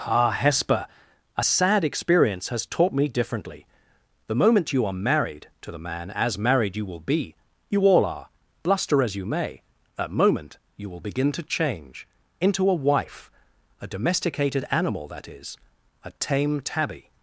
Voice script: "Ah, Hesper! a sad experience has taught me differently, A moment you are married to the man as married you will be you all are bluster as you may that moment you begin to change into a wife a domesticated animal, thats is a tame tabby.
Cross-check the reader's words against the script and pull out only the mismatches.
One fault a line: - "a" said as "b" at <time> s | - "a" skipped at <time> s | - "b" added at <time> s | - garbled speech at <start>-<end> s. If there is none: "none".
- "A" said as "The" at 4.3 s
- "will" added at 10.9 s
- "thats" said as "that" at 15.1 s